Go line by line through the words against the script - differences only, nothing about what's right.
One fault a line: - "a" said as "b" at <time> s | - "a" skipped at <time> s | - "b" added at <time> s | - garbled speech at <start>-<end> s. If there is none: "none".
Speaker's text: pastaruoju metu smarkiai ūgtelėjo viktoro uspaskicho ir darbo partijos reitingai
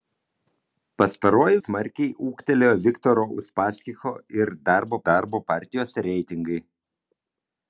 - "metu" skipped at 1.6 s
- "darbo" added at 5.1 s